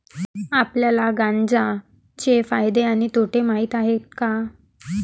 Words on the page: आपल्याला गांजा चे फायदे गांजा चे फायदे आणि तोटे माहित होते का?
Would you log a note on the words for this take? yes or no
yes